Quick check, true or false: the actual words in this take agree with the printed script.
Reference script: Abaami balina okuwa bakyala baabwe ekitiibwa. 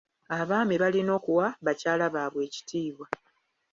true